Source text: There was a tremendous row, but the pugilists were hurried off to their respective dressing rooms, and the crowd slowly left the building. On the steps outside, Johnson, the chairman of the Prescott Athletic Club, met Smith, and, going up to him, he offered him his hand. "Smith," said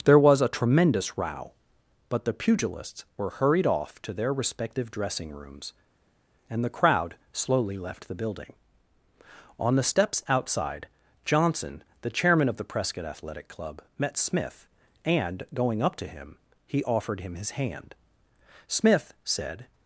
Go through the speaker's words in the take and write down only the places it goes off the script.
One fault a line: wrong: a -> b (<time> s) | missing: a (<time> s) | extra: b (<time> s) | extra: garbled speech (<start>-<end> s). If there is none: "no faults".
no faults